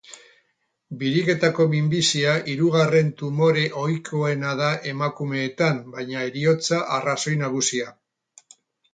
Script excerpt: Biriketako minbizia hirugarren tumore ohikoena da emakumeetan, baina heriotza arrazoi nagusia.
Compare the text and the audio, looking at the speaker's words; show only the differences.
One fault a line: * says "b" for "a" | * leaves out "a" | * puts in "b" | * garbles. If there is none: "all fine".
all fine